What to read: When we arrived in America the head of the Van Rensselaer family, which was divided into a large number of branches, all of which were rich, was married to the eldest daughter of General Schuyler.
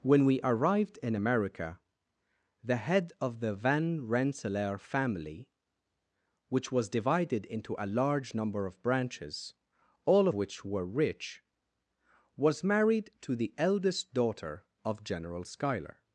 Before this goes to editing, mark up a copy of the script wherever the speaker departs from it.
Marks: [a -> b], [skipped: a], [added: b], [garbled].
When we arrived in America the head of the Van Rensselaer family, which was divided into a large number of branches, all [skipped: of] which were rich, was married to the eldest daughter of General Schuyler.